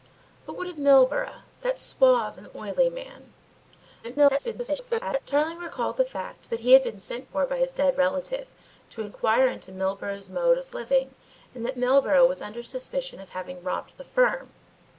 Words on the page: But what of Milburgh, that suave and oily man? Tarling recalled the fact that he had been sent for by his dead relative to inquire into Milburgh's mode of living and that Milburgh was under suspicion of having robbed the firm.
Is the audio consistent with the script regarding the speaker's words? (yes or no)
no